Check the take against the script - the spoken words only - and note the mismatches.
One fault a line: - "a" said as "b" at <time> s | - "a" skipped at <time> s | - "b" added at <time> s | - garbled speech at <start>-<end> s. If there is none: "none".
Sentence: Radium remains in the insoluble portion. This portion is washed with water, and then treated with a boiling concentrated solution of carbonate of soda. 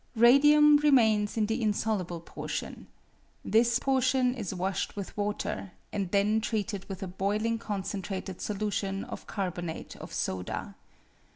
none